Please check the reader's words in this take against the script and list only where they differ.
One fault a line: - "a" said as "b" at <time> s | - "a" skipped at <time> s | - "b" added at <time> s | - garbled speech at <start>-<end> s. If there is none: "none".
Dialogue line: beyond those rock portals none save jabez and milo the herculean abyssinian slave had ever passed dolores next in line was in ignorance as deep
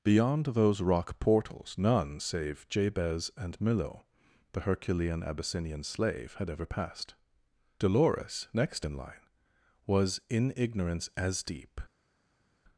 none